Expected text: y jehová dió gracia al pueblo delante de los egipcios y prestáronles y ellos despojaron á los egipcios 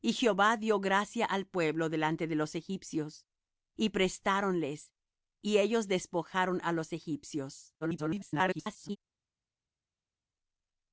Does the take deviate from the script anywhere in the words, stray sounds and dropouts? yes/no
yes